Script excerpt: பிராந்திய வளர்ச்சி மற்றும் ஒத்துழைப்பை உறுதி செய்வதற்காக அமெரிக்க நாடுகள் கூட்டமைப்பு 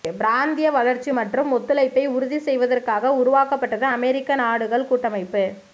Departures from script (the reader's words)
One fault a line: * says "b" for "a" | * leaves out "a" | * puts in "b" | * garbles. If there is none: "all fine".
* puts in "உருவாக்கப்பட்டது"